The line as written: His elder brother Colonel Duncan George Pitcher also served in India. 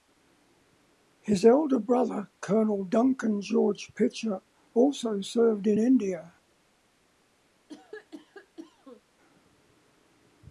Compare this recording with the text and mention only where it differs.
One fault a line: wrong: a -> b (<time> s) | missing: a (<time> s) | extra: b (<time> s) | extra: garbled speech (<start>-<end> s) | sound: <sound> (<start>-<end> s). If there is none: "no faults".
sound: cough (7.7-9.0 s)